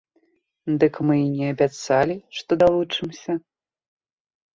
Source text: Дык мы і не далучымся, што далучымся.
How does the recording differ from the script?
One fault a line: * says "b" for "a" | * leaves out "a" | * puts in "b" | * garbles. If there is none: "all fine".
* says "абяцалі" for "далучымся"